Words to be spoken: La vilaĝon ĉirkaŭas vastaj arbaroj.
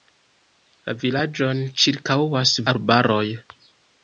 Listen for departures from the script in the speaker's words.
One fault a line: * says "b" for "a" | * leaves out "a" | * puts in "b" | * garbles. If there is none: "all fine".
* leaves out "vastaj"